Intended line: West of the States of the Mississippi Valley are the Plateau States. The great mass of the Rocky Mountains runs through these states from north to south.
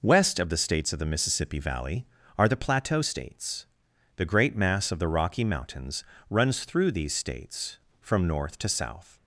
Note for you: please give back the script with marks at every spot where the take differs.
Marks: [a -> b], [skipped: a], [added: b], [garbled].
West of the States of the Mississippi Valley are the Plateau States. The great mass of the Rocky Mountains runs through these states from north to south.